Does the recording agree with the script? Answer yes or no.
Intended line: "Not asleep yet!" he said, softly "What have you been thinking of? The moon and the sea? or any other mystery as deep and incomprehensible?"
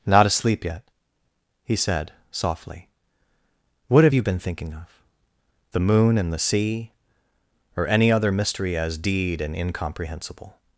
no